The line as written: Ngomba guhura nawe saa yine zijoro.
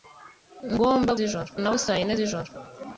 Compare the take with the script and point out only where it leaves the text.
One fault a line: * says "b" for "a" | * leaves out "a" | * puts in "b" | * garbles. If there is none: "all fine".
* says "zijoro" for "guhura"